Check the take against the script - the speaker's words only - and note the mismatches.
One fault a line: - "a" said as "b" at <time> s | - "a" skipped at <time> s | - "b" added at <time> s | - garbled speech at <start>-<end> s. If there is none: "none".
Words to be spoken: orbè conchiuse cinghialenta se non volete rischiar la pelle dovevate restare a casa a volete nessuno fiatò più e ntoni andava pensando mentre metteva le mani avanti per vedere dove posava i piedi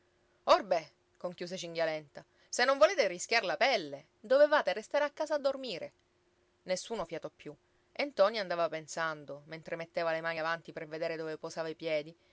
- "volete" said as "dormire" at 5.4 s